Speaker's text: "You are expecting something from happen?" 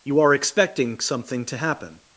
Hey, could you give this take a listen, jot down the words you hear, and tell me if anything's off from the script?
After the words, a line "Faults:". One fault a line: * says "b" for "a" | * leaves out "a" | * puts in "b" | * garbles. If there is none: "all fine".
"You are expecting something to happen?"
Faults:
* says "to" for "from"